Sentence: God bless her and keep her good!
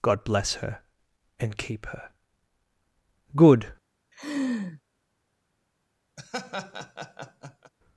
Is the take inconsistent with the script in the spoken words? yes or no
no